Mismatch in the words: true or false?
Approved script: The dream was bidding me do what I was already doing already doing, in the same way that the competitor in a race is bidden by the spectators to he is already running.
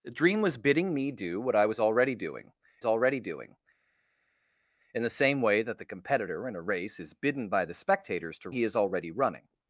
false